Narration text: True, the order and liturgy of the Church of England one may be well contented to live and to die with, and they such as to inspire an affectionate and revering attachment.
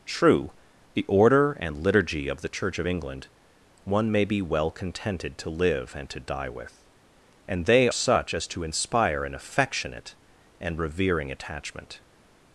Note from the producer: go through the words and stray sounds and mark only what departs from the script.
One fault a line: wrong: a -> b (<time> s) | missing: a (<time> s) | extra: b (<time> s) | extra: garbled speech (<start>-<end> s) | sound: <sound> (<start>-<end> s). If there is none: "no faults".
no faults